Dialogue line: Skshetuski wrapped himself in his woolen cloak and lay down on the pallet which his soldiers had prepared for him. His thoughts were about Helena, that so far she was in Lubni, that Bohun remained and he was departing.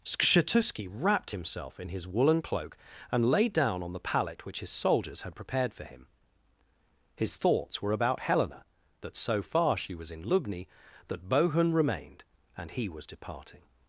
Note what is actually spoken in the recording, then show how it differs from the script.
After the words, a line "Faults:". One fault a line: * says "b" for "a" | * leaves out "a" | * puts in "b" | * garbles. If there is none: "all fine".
Skshetuski wrapped himself in his woolen cloak and lay down on the pallet which his soldiers had prepared for him. His thoughts were about Helena, that so far she was in Lubni, that Bohun remained and he was departing.
Faults:
all fine